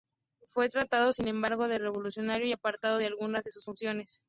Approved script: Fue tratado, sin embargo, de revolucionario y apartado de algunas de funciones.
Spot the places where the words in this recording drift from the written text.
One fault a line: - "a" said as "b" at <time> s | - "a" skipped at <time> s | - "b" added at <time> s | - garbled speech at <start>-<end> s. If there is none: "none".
- "sus" added at 3.5 s